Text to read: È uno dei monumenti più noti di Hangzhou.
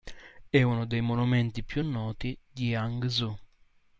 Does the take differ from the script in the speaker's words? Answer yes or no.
no